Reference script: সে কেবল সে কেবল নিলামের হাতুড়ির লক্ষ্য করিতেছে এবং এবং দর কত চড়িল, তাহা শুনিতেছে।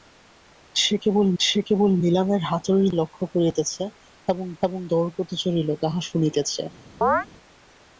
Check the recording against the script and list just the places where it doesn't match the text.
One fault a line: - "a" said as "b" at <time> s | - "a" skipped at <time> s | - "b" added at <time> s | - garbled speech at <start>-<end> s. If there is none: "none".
none